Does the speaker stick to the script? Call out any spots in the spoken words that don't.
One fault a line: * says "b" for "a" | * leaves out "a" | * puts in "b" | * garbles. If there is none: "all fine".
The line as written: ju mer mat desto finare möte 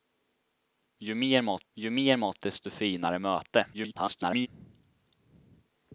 * puts in "ju mer mat"
* garbles